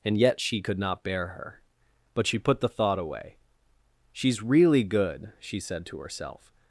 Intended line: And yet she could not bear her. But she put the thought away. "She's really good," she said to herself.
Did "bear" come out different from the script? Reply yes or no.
no